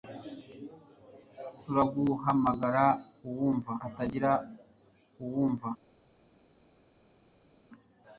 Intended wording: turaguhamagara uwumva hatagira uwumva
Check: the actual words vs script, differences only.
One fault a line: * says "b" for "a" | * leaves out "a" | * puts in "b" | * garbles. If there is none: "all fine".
all fine